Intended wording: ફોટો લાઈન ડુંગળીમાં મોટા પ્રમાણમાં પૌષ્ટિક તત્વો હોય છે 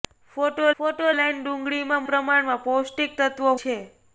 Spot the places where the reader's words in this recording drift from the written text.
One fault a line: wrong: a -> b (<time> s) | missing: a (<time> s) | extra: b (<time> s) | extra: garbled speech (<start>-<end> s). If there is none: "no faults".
extra: ફોટો (0.8 s)
missing: મોટા (2.1 s)
missing: હોય (3.6 s)